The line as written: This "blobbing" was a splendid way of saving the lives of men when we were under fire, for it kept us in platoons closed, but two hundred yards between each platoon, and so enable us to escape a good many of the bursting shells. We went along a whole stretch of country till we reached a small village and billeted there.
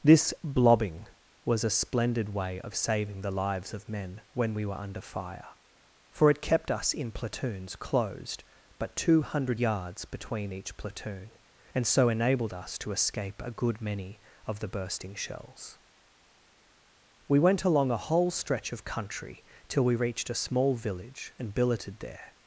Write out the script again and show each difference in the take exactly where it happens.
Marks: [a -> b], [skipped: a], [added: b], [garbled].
This "blobbing" was a splendid way of saving the lives of men when we were under fire, for it kept us in platoons closed, but two hundred yards between each platoon, and so [enable -> enabled] us to escape a good many of the bursting shells. We went along a whole stretch of country till we reached a small village and billeted there.